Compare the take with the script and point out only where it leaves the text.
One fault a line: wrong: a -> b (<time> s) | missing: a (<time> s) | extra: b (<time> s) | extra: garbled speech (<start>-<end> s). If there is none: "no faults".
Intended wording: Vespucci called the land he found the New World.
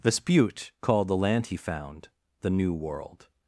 no faults